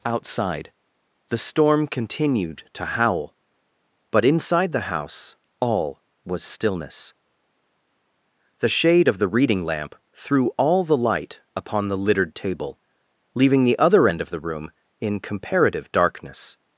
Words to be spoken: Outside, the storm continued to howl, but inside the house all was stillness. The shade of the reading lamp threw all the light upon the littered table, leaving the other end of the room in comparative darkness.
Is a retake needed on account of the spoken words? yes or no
no